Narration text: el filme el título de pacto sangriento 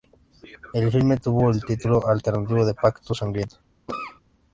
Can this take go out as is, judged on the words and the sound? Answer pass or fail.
fail